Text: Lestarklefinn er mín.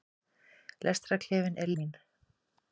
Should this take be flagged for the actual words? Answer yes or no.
no